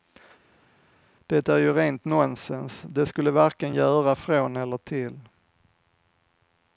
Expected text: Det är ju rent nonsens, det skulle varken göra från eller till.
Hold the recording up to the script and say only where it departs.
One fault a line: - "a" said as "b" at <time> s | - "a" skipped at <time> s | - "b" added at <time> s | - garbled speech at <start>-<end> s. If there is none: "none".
none